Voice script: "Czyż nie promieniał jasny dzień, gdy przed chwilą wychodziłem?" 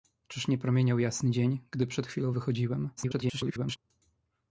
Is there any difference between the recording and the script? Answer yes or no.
yes